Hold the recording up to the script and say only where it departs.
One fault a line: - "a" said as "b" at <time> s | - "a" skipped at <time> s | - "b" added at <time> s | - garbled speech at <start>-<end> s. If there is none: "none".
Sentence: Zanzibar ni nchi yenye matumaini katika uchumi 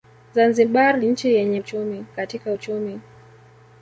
- "ni" skipped at 1.0 s
- "matumaini" said as "uchumi" at 1.6 s